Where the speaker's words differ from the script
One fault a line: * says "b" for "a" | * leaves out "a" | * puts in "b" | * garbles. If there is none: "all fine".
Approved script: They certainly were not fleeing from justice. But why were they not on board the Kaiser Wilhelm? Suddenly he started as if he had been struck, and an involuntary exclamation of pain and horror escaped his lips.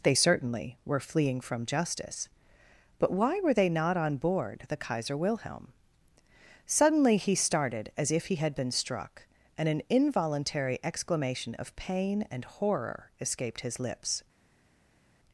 * leaves out "not"